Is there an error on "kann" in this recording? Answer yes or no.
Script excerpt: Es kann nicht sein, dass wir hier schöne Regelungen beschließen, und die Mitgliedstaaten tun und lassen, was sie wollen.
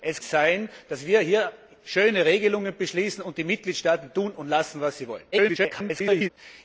yes